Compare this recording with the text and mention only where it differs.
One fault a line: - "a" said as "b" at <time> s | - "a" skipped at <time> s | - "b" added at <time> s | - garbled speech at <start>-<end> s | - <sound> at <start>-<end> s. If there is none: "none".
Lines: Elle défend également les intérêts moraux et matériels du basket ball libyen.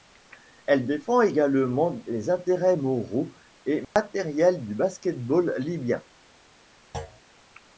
- dropout at 3.8-4.0 s
- thud at 6.9-7.2 s